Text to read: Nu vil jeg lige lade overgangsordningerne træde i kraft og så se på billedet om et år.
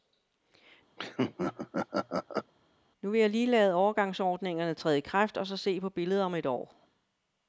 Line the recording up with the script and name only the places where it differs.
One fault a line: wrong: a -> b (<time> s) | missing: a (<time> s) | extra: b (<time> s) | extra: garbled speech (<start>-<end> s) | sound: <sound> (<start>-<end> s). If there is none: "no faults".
sound: laugh (1.0-2.5 s)